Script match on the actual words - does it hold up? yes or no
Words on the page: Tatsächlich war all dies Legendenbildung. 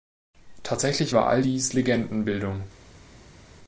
yes